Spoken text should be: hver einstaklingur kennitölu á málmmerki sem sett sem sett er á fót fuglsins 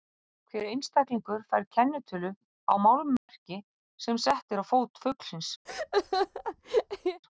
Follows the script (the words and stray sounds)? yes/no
no